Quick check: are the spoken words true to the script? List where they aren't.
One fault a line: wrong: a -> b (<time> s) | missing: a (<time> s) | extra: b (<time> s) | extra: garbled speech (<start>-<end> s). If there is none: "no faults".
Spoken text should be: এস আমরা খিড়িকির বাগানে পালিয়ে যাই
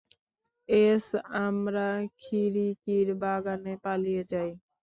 no faults